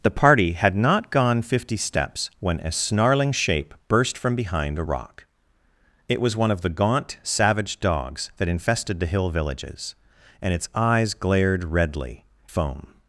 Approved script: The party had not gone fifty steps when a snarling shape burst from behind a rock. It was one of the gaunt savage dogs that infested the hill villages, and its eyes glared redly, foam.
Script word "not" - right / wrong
right